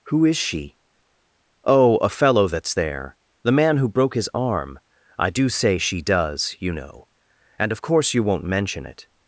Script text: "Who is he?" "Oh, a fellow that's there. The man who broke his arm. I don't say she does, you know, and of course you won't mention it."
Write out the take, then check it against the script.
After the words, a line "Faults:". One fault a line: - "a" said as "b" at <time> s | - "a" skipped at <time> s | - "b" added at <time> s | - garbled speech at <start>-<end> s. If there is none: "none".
"Who is she?" "Oh, a fellow that's there. The man who broke his arm. I do say she does, you know, and of course you won't mention it."
Faults:
- "he" said as "she" at 0.4 s
- "don't" said as "do" at 5.3 s